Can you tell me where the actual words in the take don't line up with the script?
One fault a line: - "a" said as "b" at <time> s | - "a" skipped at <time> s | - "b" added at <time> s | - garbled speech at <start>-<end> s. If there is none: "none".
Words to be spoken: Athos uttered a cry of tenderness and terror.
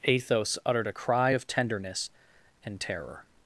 none